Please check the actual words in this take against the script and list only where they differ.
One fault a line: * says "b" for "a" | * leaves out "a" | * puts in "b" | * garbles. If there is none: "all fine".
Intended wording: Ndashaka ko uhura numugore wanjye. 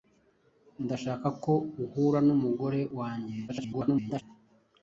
* garbles